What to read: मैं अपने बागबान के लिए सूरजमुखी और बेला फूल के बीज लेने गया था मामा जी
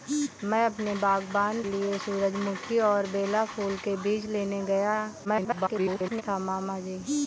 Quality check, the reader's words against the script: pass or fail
fail